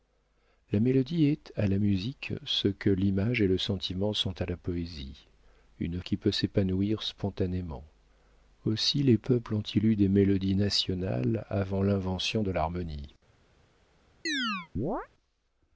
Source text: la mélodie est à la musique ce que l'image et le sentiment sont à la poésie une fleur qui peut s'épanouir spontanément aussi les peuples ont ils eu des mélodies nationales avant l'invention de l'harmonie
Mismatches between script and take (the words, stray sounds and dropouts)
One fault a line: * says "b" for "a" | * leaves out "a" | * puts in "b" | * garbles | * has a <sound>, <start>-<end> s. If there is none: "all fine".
* leaves out "fleur"
* has a chirp, 14.3-15.1 s